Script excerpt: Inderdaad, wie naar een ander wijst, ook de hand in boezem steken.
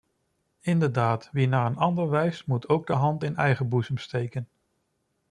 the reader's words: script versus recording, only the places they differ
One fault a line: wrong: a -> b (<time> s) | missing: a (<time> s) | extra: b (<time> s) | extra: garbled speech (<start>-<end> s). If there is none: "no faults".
extra: moet (2.5 s)
extra: eigen (3.4 s)